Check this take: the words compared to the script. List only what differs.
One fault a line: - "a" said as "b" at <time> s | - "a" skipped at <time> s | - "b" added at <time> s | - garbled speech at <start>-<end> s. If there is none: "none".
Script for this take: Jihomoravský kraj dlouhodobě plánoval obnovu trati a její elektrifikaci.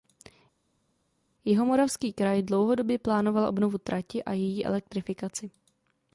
none